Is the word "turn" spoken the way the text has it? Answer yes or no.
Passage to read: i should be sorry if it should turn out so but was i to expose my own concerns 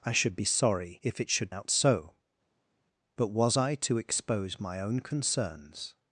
no